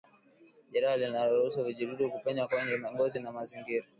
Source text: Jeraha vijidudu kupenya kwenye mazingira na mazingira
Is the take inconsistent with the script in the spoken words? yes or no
yes